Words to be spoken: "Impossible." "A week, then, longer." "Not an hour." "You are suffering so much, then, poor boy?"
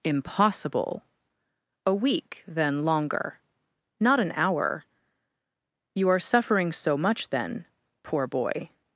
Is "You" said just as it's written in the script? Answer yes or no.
yes